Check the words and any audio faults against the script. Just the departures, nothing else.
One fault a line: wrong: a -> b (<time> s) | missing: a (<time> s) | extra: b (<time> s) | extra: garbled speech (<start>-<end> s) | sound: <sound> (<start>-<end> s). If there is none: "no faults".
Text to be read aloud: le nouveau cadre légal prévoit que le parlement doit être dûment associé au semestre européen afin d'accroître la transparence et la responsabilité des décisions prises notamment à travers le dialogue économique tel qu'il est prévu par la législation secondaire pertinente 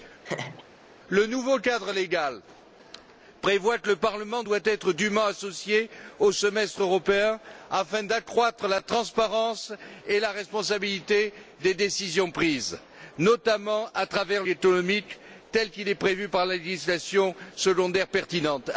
sound: laugh (0.2-0.6 s)
missing: le dialogue (14.4 s)